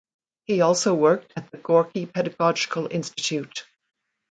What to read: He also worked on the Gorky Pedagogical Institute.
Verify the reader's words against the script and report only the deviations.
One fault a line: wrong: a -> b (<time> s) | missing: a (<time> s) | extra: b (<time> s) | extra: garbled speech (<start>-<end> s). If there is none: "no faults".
wrong: on -> at (1.4 s)